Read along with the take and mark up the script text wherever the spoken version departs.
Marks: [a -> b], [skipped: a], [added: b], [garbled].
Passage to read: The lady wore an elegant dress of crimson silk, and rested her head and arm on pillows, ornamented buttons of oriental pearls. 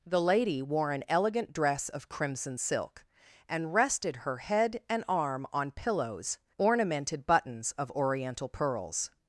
The lady wore an elegant dress of crimson silk, and rested her head and arm on pillows, ornamented buttons of oriental pearls.